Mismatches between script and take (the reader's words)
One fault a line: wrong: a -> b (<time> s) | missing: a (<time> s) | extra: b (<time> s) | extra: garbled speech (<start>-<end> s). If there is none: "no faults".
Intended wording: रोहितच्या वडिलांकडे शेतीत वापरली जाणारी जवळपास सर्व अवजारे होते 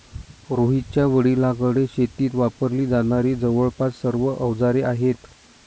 wrong: होते -> आहेत (4.8 s)